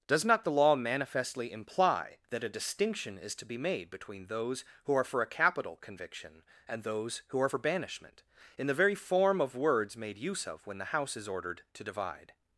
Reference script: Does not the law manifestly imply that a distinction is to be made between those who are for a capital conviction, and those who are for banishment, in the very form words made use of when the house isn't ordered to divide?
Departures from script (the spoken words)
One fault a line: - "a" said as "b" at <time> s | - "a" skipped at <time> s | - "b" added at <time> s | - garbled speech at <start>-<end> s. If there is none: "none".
- "of" added at 9.4 s
- "isn't" said as "is" at 11.1 s